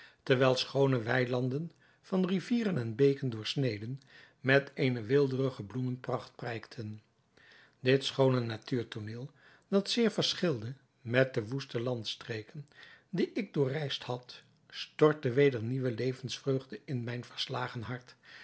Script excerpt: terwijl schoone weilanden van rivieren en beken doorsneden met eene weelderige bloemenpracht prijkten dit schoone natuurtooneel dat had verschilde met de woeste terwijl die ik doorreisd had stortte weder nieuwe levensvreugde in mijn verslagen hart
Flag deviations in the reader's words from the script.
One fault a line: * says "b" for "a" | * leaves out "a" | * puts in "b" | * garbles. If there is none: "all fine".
* says "zeer" for "had"
* says "landstreken" for "terwijl"